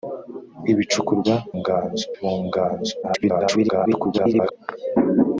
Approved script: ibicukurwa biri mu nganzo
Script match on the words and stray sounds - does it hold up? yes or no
no